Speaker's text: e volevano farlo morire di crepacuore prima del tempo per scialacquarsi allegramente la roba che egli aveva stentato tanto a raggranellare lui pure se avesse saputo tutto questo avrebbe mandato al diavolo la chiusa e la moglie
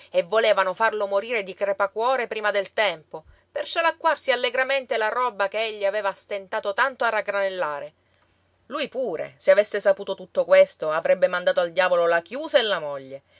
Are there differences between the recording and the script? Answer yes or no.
no